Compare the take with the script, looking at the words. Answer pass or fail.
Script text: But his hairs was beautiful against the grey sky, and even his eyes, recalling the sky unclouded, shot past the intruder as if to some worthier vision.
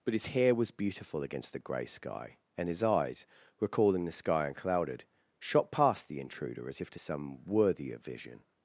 fail